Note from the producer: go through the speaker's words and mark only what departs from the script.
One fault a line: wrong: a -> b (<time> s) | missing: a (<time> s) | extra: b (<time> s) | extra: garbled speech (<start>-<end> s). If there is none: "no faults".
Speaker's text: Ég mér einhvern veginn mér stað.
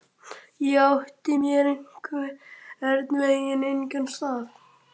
extra: átti (0.8 s)
wrong: mér -> engan (3.7 s)